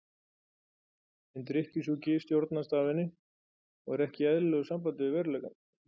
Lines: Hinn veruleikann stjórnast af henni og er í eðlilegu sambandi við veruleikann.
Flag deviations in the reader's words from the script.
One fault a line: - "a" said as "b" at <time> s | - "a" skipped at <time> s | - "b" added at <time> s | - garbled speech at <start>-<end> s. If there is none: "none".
- "veruleikann" said as "drykkjusjúki" at 1.5 s
- "ekki" added at 4.1 s